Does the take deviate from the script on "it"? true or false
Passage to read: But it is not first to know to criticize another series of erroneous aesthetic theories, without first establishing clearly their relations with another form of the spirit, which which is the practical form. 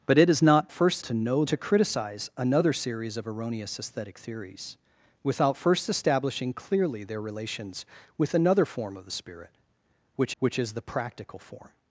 false